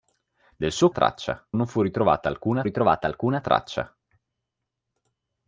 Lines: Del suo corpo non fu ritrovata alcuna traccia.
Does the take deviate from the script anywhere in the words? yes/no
yes